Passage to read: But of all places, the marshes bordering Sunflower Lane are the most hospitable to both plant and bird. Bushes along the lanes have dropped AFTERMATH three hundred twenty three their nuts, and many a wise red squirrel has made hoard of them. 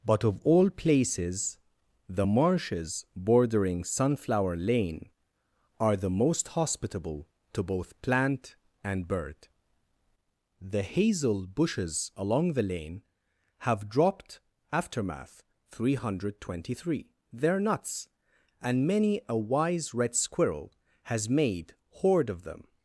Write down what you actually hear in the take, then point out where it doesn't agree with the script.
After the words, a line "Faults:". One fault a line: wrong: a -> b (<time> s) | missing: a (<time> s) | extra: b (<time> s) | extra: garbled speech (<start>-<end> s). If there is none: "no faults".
But of all places, the marshes bordering Sunflower Lane are the most hospitable to both plant and bird. The Hazel Bushes along the lane have dropped AFTERMATH three hundred twenty three their nuts, and many a wise red squirrel has made hoard of them.
Faults:
extra: The Hazel (10.6 s)
wrong: lanes -> lane (12.6 s)